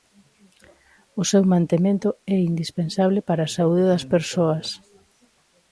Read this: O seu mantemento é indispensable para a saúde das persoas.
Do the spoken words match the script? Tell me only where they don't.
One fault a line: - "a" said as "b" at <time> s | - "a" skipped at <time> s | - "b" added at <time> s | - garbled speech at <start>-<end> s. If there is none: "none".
none